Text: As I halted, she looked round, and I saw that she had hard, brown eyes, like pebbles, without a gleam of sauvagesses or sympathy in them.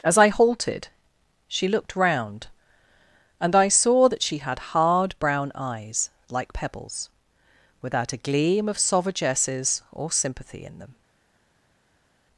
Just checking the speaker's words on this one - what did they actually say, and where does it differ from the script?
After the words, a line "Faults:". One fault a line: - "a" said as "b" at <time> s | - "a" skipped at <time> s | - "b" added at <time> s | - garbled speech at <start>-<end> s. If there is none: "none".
As I halted, she looked round, and I saw that she had hard, brown eyes, like pebbles, without a gleam of sauvagesses or sympathy in them.
Faults:
none